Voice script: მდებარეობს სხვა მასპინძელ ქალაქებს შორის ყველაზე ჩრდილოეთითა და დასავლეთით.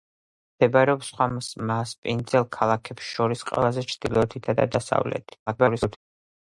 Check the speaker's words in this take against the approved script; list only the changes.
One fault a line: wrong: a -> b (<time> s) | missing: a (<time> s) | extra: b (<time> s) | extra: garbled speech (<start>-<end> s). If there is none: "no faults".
extra: garbled speech (5.5-6.0 s)